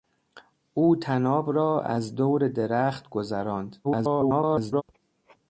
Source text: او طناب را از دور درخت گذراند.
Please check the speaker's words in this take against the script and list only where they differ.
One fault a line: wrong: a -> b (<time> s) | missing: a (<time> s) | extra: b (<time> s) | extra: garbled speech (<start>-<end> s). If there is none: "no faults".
extra: garbled speech (3.8-4.8 s)